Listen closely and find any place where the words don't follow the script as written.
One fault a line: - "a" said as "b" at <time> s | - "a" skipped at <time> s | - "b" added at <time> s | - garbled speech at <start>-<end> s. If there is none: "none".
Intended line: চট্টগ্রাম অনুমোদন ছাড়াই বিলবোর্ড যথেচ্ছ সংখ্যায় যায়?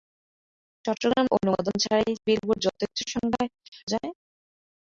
none